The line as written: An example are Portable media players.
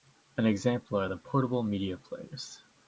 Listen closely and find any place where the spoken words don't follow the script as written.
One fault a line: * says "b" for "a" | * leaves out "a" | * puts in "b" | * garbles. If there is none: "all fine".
* puts in "the"